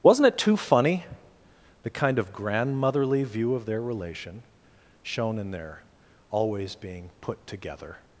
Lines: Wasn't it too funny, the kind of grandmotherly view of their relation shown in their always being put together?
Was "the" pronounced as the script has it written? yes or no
yes